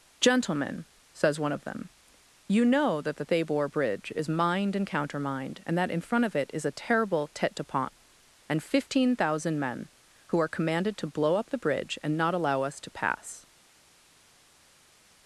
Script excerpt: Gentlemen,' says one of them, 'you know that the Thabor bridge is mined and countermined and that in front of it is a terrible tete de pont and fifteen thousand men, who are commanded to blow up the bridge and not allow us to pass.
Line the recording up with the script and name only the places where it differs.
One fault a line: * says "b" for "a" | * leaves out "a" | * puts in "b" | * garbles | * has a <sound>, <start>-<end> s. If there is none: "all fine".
all fine